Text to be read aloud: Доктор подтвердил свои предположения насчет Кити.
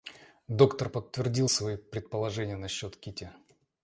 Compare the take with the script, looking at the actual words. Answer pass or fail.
pass